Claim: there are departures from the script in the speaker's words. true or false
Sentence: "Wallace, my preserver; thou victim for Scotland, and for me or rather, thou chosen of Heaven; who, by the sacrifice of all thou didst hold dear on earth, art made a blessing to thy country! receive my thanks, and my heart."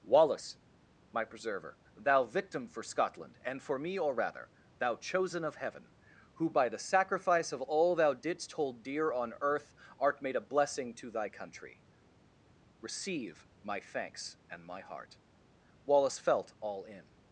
true